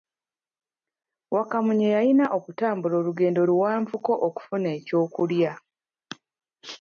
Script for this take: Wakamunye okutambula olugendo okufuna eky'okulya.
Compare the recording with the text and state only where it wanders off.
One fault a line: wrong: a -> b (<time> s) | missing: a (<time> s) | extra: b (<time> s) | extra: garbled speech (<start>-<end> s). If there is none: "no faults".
extra: yalina (1.9 s)
extra: luwanvuko (3.5 s)